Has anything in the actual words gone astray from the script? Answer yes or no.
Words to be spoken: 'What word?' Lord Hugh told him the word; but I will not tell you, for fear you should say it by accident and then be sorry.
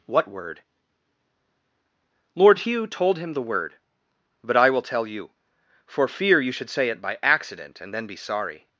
yes